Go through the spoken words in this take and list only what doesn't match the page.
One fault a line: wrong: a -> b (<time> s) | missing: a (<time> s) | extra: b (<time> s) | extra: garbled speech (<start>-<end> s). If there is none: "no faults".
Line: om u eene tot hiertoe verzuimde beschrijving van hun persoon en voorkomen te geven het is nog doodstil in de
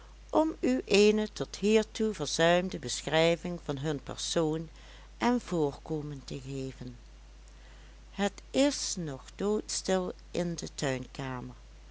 no faults